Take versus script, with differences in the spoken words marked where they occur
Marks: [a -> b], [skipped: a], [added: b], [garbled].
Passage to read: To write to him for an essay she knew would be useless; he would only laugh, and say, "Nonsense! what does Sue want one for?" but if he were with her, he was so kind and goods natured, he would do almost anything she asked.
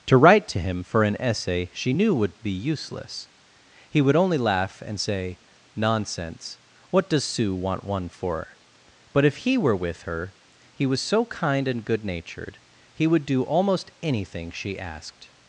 To write to him for an essay she knew would be useless; he would only laugh, and say, "Nonsense! what does Sue want one for?" but if he were with her, he was so kind and [goods -> good] natured, he would do almost anything she asked.